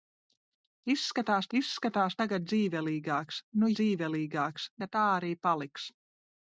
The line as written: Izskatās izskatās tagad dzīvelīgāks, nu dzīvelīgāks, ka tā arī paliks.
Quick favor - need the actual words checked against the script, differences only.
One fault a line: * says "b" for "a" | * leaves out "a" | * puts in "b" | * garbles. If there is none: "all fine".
all fine